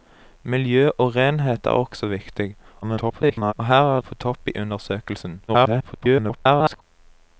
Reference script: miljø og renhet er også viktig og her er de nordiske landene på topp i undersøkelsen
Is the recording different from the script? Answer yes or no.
yes